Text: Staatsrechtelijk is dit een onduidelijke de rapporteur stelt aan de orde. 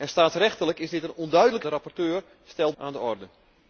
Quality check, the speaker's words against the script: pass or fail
pass